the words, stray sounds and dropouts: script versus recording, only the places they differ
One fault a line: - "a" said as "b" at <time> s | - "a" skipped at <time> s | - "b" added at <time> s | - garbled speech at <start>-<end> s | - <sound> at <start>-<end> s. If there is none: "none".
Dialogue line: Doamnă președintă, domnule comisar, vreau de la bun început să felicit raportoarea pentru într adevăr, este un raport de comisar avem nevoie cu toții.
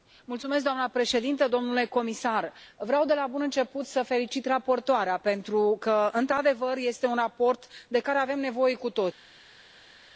- "că" added at 5.8 s
- "comisar" said as "care" at 8.0 s